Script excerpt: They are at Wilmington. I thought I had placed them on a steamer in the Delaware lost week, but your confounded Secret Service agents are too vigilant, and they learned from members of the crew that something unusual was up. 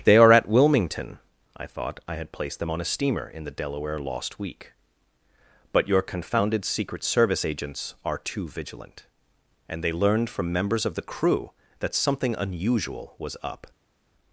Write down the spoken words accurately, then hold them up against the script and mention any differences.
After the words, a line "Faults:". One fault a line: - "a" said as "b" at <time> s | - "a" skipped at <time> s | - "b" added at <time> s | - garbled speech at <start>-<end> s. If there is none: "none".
They are at Wilmington. I thought I had placed them on a steamer in the Delaware lost week, but your confounded Secret Service agents are too vigilant, and they learned from members of the crew that something unusual was up.
Faults:
none